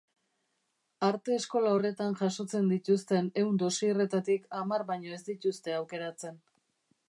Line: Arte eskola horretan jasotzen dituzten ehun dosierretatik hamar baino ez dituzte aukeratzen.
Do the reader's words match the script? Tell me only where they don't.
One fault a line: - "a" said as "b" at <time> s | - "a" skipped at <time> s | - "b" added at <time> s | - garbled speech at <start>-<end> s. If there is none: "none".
none